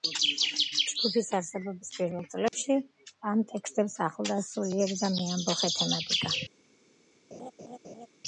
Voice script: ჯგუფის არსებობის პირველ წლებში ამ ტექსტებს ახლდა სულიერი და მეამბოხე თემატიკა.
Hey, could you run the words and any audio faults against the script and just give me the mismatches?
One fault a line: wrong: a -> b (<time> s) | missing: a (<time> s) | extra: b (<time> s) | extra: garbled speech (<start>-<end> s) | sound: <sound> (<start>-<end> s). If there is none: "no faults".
sound: dropout (2.5-2.5 s)
sound: laugh (7.3-8.1 s)